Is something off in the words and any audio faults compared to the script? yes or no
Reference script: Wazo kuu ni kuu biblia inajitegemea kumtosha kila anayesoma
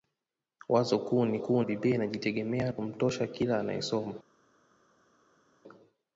no